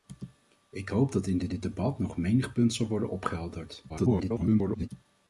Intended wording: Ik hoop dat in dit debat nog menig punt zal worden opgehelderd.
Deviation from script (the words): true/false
true